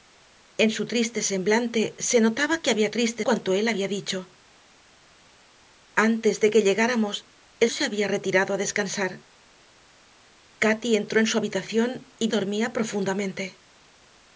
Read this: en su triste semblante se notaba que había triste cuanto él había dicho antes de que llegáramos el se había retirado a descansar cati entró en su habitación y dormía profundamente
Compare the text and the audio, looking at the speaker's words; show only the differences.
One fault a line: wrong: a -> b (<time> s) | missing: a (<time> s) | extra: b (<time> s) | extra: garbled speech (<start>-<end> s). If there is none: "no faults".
no faults